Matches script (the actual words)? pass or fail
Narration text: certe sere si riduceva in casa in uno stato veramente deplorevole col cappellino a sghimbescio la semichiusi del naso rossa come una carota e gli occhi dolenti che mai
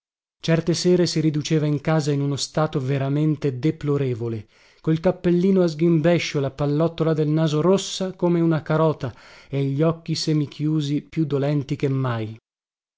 fail